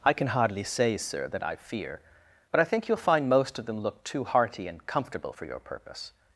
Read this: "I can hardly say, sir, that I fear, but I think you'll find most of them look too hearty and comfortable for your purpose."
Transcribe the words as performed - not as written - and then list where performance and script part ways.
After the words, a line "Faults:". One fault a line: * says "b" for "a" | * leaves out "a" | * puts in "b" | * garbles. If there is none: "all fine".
"I can hardly say, sir, that I fear, but I think you'll find most of them look too hearty and comfortable for your purpose."
Faults:
all fine